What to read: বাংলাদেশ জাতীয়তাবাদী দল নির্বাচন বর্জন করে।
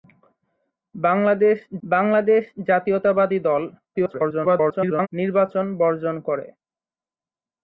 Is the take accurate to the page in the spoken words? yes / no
no